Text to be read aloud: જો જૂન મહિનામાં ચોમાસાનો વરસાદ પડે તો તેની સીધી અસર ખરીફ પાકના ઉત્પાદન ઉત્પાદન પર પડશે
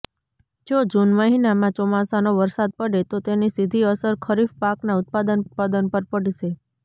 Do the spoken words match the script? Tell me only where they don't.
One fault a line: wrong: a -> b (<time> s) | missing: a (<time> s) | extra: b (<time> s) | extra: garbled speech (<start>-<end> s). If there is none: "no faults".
no faults